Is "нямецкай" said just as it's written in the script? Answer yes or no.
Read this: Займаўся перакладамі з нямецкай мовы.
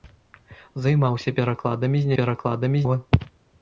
no